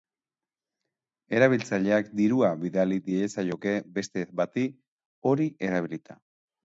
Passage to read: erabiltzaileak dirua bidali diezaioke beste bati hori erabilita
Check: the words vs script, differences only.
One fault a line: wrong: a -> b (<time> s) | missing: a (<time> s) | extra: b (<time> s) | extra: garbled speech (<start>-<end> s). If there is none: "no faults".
no faults